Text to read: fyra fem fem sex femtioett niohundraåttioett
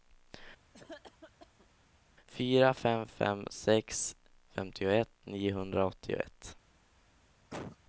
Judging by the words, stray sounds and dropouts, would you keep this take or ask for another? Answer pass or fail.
fail